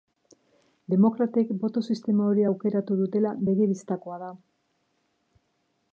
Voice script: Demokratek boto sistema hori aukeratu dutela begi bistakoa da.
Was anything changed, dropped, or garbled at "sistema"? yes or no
no